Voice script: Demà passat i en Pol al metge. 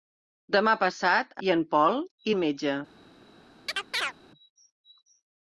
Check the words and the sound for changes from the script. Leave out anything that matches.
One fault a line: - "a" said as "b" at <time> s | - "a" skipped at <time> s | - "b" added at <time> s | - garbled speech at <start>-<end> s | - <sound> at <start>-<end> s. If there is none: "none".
- chirp at 3.7-4.1 s